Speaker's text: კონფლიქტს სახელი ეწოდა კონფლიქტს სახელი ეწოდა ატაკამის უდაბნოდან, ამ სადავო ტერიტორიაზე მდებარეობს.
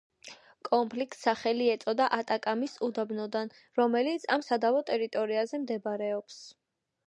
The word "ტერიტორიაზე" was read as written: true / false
true